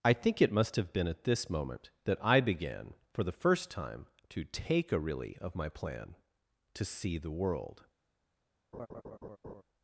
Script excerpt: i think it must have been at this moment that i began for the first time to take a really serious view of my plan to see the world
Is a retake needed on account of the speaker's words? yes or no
yes